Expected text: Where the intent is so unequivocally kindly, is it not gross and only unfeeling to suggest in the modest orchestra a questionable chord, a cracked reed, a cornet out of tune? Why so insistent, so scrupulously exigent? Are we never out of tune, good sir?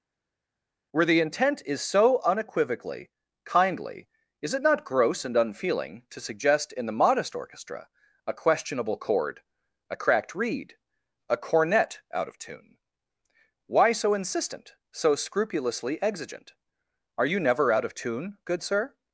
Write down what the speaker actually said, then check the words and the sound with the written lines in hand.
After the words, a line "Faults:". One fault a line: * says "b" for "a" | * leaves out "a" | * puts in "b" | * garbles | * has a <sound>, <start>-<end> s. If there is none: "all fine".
Where the intent is so unequivocally kindly, is it not gross and unfeeling to suggest in the modest orchestra a questionable chord, a cracked reed, a cornet out of tune? Why so insistent, so scrupulously exigent? Are you never out of tune, good sir?
Faults:
* leaves out "only"
* says "you" for "we"